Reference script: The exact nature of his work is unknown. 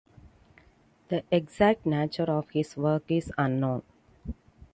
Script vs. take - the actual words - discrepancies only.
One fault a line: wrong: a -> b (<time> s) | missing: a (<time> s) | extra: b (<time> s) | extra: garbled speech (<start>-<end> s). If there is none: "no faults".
no faults